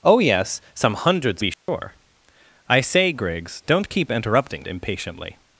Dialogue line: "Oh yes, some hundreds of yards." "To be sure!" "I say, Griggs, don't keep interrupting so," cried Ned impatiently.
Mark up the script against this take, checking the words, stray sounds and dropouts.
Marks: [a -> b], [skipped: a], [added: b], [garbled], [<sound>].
"Oh yes, some hundreds [skipped: of yards." "To] be sure!" [dropout] "I say, Griggs, don't keep interrupting [skipped: so," cried Ned] impatiently.